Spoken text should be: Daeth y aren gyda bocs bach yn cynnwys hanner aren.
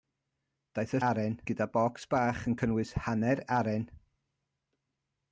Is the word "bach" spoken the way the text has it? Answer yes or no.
yes